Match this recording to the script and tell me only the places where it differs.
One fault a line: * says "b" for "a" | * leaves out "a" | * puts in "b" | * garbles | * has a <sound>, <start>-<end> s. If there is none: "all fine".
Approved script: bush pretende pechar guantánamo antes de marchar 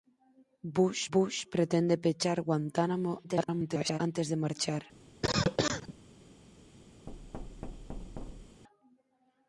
* puts in "bush"
* garbles
* has a cough, 5.2-5.9 s
* has a thud, 7.1-8.6 s